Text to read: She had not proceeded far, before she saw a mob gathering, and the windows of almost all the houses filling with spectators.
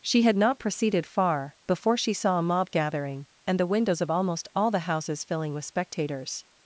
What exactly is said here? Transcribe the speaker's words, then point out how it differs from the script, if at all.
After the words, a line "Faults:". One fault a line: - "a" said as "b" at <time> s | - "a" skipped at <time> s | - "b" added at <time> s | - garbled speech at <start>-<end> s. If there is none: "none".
She had not proceeded far, before she saw a mob gathering, and the windows of almost all the houses filling with spectators.
Faults:
none